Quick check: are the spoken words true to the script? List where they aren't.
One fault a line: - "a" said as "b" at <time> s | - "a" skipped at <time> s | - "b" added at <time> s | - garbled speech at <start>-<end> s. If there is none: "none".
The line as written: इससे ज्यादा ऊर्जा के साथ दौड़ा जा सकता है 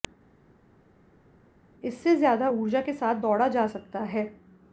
none